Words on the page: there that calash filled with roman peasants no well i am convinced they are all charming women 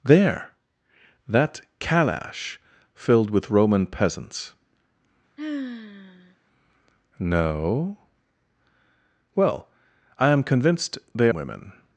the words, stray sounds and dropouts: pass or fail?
fail